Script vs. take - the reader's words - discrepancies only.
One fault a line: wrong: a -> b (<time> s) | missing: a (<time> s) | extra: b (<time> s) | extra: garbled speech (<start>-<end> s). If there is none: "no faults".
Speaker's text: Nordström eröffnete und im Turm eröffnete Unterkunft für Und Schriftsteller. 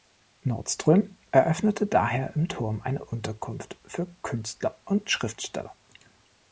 wrong: und -> daher (1.8 s)
wrong: eröffnete -> eine (2.8 s)
extra: Künstler (4.2 s)